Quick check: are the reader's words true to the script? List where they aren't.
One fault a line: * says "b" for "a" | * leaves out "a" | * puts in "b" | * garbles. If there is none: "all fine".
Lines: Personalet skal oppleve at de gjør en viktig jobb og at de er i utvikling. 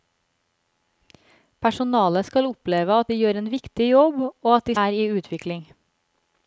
all fine